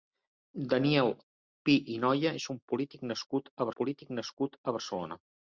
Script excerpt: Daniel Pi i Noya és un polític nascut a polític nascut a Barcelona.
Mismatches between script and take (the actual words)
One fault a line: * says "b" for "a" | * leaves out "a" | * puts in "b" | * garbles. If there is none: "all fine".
all fine